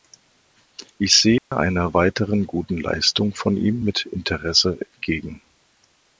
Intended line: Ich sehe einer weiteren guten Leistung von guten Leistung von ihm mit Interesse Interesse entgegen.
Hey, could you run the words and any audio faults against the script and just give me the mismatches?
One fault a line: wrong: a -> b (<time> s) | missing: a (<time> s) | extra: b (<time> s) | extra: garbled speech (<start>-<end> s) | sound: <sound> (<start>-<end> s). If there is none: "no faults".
sound: dropout (1.4-1.5 s)
missing: guten Leistung von (3.5 s)
missing: Interesse (4.8 s)